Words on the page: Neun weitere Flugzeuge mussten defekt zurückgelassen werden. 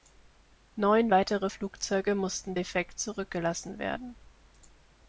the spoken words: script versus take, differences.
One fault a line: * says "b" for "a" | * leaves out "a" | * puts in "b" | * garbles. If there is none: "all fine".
all fine